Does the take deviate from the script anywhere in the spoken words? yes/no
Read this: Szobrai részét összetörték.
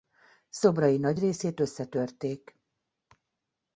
yes